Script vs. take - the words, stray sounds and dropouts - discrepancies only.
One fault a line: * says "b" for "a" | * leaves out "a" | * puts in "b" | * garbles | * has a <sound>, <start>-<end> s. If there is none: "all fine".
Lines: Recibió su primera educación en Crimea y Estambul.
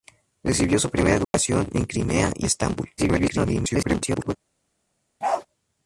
* has a dropout, 1.2-1.3 s
* garbles
* has a bark, 5.2-5.5 s